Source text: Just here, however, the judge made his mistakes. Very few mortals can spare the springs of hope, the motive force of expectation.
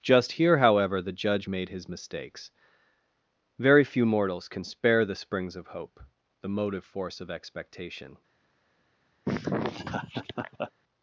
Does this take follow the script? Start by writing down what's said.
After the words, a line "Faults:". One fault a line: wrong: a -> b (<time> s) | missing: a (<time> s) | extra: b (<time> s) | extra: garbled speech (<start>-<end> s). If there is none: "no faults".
Just here, however, the judge made his mistakes. Very few mortals can spare the springs of hope, the motive force of expectation.
Faults:
no faults